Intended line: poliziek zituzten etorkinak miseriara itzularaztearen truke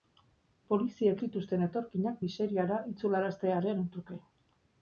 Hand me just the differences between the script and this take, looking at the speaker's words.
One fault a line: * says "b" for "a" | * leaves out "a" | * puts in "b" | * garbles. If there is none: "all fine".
all fine